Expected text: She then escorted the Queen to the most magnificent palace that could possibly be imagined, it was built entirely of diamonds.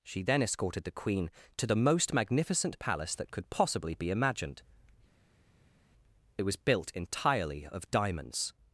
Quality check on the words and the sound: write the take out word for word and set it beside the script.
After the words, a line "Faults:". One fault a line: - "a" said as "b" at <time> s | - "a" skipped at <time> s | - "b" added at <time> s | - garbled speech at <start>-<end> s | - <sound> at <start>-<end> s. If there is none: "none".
She then escorted the Queen to the most magnificent palace that could possibly be imagined, it was built entirely of diamonds.
Faults:
none